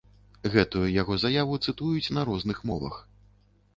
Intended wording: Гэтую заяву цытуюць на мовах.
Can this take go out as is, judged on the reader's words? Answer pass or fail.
fail